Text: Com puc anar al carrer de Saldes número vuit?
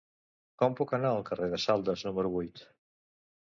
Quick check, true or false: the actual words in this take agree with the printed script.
true